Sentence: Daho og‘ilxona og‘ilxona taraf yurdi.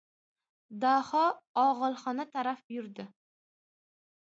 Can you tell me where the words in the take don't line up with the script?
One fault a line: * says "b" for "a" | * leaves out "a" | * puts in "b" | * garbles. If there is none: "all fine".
* leaves out "og‘ilxona"